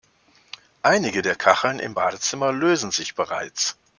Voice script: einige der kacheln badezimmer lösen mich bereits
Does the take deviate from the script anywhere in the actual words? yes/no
yes